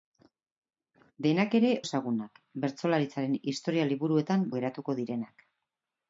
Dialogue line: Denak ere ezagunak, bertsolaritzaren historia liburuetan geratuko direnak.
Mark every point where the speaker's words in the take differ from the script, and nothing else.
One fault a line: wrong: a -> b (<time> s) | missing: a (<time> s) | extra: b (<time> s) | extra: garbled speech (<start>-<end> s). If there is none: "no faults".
no faults